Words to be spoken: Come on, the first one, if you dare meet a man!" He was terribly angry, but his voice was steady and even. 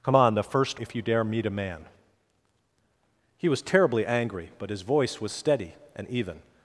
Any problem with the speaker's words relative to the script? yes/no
yes